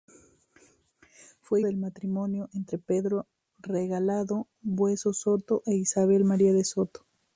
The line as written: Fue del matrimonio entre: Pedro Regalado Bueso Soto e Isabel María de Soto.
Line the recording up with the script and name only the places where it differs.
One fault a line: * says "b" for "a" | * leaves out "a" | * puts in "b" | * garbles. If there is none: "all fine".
all fine